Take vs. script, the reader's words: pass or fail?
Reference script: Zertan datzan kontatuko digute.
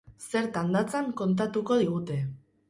pass